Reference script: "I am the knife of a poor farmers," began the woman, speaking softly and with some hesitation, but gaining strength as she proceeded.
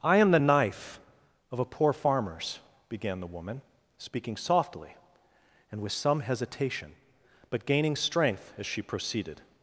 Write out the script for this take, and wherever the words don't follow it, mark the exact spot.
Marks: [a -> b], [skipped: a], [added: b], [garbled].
"I am the knife of a poor farmers," began the woman, speaking softly and with some hesitation, but gaining strength as she proceeded.